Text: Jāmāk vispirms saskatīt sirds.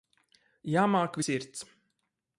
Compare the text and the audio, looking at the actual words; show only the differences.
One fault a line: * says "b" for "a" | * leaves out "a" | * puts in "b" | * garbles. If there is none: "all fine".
* leaves out "vispirms saskatīt"